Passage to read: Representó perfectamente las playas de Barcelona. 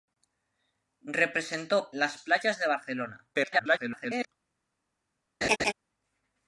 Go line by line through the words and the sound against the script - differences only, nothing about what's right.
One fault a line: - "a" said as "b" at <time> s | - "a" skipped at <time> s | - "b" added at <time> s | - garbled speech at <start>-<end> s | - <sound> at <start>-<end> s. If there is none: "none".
- "perfectamente" skipped at 1.9 s
- garbled speech at 3.3-4.3 s
- laugh at 5.4-5.7 s